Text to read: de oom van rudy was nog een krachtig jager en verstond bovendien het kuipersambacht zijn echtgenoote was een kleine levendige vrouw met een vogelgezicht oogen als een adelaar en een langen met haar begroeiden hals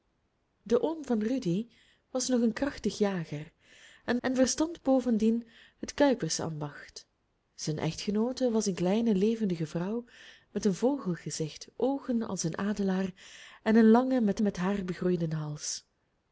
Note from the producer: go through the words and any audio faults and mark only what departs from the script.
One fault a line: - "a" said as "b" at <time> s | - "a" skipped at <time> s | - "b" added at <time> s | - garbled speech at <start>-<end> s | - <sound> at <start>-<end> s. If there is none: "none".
- "en" added at 4.2 s
- "met" added at 14.4 s